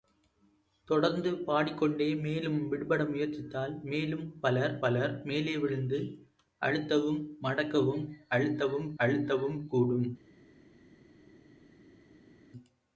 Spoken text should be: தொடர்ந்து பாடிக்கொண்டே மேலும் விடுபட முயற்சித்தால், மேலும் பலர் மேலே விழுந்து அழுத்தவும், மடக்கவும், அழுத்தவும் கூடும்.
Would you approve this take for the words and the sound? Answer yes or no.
no